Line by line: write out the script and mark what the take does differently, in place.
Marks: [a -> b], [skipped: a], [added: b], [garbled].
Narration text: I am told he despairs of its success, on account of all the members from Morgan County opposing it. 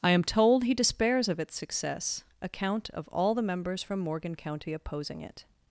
I am told he despairs of its success, [skipped: on] account of all the members from Morgan County opposing it.